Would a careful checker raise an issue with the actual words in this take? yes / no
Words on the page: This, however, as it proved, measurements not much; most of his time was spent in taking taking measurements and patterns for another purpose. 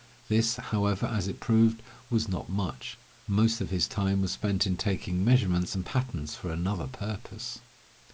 yes